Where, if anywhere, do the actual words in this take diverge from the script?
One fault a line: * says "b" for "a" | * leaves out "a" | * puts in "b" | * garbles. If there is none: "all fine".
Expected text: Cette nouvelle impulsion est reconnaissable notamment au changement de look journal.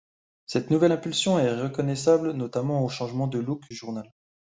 all fine